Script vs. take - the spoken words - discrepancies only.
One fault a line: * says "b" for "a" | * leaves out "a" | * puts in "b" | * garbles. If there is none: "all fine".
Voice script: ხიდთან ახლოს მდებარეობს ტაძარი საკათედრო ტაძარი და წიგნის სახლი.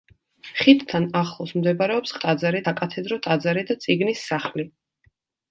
all fine